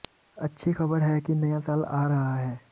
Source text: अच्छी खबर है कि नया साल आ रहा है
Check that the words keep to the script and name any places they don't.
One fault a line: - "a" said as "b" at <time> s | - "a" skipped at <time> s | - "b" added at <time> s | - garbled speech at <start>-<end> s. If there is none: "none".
none